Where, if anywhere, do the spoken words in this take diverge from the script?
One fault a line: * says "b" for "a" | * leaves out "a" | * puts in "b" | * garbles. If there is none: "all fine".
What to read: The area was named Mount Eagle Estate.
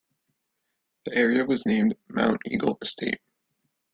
all fine